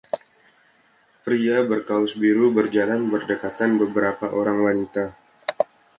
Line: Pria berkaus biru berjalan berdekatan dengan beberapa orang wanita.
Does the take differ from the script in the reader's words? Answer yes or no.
yes